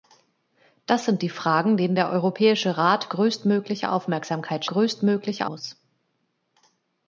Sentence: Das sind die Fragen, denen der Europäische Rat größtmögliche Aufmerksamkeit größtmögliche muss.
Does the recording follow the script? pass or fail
pass